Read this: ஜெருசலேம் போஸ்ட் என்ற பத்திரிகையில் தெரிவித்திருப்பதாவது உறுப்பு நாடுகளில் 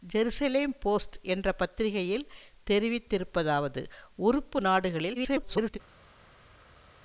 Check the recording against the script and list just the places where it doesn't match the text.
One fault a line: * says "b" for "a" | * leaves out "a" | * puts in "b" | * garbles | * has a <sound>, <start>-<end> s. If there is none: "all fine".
* garbles